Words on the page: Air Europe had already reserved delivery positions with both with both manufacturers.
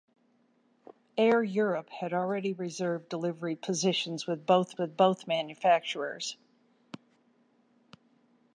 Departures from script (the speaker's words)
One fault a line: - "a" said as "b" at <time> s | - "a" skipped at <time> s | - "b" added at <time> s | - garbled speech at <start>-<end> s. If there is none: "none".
none